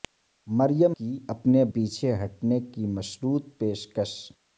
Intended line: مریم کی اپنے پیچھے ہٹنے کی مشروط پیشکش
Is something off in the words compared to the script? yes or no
no